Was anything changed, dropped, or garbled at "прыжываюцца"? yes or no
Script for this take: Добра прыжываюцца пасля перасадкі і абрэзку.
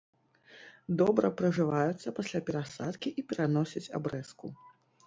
no